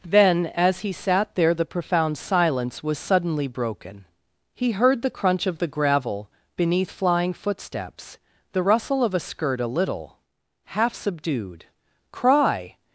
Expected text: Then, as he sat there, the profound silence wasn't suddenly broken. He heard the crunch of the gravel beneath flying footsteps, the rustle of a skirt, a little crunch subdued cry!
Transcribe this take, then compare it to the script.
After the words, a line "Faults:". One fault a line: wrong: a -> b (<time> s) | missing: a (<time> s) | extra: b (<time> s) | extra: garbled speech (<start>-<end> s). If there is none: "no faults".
Then, as he sat there, the profound silence was suddenly broken. He heard the crunch of the gravel beneath flying footsteps, the rustle of a skirt, a little half subdued cry!
Faults:
wrong: wasn't -> was (2.8 s)
wrong: crunch -> half (10.6 s)